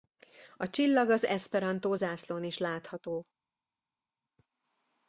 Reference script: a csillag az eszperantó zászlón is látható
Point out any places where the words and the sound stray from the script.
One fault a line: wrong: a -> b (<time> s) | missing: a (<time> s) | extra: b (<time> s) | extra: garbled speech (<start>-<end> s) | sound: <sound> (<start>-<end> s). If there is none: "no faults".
no faults